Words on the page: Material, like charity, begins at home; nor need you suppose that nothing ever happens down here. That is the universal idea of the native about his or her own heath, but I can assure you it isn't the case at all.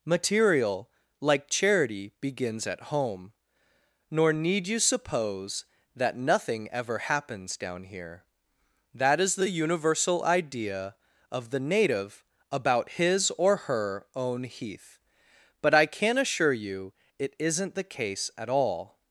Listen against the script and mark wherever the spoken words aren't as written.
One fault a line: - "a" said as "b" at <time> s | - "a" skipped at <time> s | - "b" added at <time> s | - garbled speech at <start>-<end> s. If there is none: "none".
none